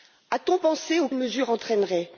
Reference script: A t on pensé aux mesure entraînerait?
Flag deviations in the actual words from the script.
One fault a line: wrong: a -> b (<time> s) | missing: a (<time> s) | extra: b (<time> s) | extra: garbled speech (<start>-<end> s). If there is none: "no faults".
no faults